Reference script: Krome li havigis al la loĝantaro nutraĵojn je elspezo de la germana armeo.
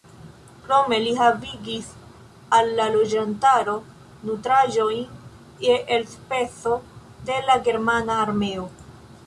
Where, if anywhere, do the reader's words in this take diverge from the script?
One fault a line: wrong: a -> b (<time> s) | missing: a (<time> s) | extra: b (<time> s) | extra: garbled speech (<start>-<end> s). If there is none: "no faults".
no faults